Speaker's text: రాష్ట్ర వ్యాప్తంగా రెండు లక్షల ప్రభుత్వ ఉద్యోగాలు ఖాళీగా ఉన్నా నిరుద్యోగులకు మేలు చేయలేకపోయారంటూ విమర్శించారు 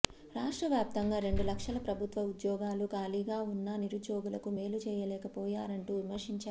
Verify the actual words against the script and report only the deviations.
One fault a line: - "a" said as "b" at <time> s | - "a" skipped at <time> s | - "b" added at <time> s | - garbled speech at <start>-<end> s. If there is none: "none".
none